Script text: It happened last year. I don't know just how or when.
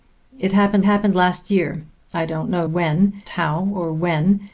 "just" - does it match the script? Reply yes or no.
no